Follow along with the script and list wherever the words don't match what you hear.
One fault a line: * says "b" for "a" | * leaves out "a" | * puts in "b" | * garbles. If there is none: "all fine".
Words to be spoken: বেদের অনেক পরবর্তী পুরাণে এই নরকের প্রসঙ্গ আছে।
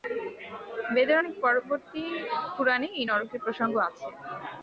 all fine